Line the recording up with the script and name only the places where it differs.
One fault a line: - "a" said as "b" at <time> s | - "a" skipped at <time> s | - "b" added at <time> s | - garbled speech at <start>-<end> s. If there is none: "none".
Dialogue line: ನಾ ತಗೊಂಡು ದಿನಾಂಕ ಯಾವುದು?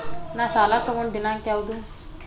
- "ಸಾಲ" added at 0.5 s